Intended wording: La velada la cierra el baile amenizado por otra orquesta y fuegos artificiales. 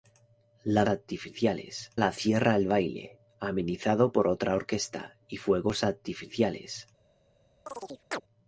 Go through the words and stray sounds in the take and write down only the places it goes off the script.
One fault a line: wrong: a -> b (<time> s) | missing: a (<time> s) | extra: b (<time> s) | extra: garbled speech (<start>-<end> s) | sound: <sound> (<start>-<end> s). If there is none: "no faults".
wrong: velada -> artificiales (0.9 s)
sound: chirp (7.7-8.2 s)